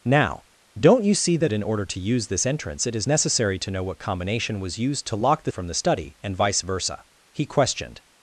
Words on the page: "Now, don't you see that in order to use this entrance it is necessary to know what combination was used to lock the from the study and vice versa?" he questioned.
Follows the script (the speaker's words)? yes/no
yes